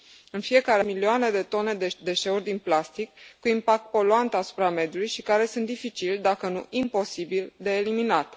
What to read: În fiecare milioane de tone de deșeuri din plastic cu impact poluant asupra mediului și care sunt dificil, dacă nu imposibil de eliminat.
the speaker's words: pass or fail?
pass